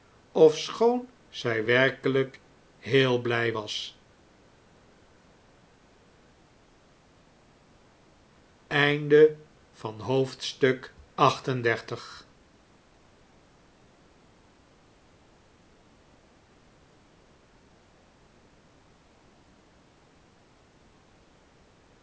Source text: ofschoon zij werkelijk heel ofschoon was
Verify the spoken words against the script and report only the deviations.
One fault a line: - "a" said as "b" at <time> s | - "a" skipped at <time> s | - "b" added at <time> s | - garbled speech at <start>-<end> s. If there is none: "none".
- "ofschoon" said as "blij" at 3.2 s